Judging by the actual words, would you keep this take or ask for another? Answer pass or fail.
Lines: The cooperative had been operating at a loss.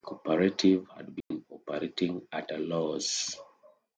pass